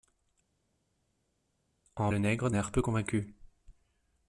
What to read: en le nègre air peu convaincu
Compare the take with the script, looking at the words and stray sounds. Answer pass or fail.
pass